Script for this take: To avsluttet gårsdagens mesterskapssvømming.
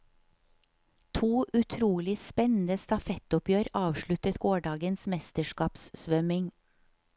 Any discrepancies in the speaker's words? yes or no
yes